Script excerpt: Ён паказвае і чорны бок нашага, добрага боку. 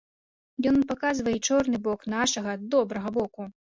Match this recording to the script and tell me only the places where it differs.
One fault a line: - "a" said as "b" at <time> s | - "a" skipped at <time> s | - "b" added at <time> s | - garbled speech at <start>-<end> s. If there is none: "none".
none